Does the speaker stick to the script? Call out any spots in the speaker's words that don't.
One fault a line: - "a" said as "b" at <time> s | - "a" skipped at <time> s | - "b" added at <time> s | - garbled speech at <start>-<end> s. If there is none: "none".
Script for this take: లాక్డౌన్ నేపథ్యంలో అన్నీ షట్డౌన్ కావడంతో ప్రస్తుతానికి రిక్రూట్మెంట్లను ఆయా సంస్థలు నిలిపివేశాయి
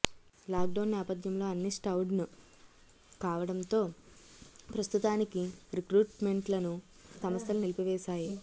- "ఆయా" skipped at 6.7 s